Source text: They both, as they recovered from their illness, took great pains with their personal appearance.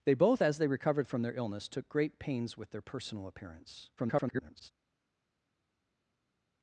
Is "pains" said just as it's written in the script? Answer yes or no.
yes